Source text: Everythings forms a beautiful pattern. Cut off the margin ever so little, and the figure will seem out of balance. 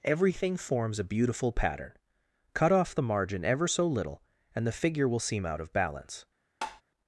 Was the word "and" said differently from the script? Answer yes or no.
no